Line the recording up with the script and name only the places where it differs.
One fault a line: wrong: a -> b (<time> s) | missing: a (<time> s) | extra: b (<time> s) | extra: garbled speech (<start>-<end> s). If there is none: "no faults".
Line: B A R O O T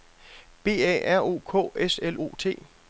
extra: K S L (1.4 s)